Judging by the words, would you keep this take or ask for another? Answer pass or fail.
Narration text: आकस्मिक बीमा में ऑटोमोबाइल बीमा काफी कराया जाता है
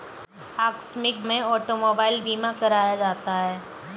fail